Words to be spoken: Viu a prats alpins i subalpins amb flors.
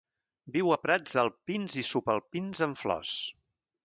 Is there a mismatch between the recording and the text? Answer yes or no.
no